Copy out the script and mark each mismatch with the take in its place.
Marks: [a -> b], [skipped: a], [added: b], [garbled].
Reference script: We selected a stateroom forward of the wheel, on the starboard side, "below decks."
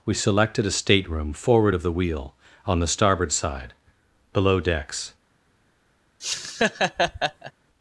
We selected a stateroom forward of the wheel, on the starboard side, "below decks."